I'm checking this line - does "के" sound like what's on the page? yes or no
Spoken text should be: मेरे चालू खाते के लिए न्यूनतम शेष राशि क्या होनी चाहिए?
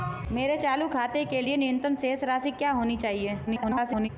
yes